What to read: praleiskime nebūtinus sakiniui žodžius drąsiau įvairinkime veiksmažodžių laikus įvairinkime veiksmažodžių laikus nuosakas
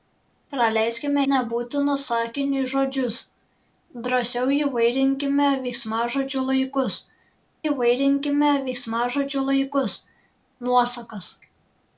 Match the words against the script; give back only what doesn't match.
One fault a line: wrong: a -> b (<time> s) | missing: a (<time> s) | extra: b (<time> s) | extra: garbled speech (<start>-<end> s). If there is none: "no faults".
no faults